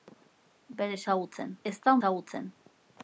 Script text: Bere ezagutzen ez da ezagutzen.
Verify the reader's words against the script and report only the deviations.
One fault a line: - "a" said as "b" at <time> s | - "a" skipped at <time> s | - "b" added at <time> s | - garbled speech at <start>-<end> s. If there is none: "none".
none